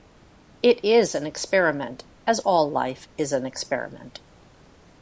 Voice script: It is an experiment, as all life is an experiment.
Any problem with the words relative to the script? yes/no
no